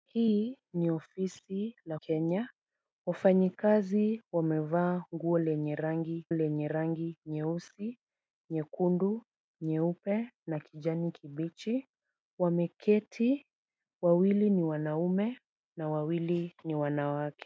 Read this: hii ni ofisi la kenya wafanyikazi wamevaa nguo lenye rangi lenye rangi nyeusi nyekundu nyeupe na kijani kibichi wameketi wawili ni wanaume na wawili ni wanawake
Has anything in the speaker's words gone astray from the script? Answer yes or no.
no